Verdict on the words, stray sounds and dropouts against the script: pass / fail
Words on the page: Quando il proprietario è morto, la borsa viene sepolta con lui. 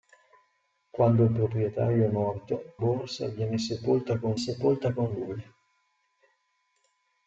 fail